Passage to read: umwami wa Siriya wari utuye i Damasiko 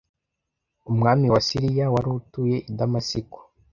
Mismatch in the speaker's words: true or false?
false